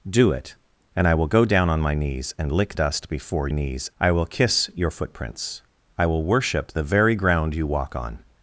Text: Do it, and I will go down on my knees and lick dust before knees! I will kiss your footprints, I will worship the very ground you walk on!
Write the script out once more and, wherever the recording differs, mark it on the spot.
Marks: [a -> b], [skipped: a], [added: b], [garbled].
Do it, and I will go down on my knees and lick dust before knees! I will kiss your footprints, I will worship the very ground you walk on!